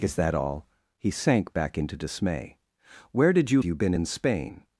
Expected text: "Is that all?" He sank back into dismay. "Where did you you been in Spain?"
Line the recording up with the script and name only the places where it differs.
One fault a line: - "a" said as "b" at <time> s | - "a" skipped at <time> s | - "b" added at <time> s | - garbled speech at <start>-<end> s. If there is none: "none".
none